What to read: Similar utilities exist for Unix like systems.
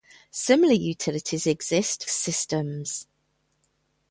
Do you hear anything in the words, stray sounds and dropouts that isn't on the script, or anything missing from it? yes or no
yes